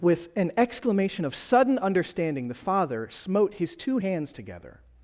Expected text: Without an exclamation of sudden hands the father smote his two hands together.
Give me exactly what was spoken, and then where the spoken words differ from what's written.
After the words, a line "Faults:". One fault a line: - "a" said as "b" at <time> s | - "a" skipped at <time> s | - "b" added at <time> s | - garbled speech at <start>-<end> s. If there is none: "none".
With an exclamation of sudden understanding the father smote his two hands together.
Faults:
- "Without" said as "With" at 0.0 s
- "hands" said as "understanding" at 1.8 s